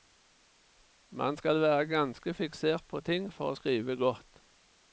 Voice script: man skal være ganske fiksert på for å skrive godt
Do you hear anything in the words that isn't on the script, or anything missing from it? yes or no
yes